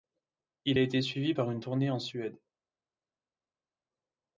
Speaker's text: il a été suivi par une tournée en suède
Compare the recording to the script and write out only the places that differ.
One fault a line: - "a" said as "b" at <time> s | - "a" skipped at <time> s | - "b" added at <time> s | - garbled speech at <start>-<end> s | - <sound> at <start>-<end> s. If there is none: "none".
none